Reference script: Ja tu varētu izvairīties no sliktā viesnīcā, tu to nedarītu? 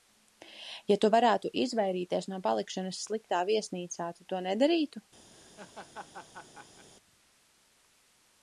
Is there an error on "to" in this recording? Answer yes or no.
no